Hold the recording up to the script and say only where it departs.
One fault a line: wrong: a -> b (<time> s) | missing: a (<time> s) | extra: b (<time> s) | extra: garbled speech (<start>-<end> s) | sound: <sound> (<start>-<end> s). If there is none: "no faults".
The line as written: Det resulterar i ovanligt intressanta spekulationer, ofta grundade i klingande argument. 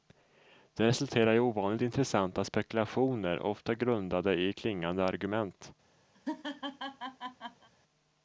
sound: laugh (6.1-7.7 s)